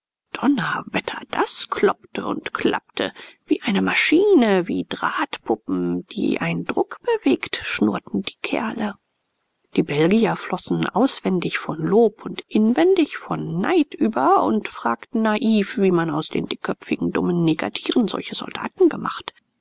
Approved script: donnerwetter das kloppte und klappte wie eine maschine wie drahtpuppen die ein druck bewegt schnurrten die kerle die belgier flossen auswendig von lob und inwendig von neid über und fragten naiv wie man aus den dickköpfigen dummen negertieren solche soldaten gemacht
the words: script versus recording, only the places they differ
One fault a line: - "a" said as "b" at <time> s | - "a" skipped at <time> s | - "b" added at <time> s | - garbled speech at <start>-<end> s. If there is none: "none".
none